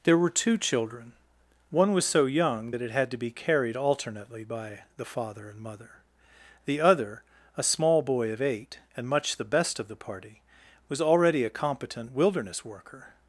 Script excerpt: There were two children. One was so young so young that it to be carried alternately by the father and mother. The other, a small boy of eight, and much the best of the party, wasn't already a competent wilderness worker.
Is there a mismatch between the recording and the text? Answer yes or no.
yes